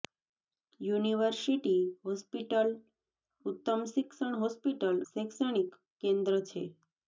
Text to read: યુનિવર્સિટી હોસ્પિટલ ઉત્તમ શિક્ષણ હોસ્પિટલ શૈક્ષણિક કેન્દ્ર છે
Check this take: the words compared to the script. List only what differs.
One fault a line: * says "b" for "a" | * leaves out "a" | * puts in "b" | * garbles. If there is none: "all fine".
all fine